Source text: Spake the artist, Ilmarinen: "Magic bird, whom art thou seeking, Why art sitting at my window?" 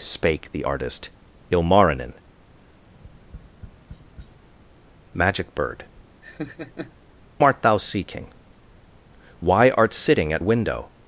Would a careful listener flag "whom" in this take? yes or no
yes